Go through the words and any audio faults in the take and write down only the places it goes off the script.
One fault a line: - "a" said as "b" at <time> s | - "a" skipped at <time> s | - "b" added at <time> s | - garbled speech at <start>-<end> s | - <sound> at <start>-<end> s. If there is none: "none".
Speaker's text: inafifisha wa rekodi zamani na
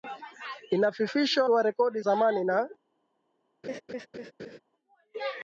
- laugh at 3.6-4.6 s